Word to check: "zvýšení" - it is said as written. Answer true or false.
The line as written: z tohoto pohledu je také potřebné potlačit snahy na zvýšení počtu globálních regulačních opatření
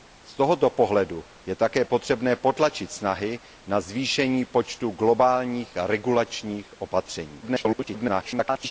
true